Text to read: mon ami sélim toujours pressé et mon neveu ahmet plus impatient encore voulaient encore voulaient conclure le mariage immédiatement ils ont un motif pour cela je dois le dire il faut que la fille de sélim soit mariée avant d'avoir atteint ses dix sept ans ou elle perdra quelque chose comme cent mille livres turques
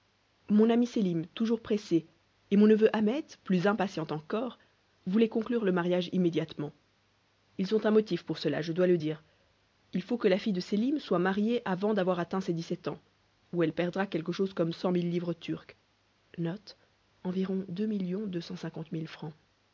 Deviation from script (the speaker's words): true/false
true